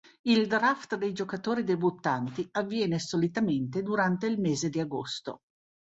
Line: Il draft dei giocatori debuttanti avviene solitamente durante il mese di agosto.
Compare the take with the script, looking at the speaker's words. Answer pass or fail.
pass